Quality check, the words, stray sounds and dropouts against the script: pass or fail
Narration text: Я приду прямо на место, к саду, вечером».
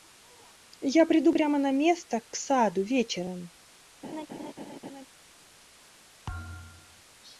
fail